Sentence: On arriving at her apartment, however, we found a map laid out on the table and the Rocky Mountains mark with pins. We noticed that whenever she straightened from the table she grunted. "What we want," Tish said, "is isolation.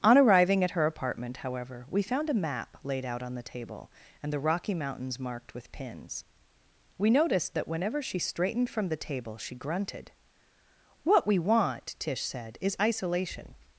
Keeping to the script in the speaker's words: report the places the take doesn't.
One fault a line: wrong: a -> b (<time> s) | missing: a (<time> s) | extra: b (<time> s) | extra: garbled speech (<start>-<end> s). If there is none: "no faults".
wrong: mark -> marked (5.2 s)